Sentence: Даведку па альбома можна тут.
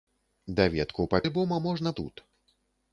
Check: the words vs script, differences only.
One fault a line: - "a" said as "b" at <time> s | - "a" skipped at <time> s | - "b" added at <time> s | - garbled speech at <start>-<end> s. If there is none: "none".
none